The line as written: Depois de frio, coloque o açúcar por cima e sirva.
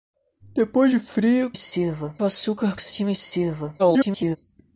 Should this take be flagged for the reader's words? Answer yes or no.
yes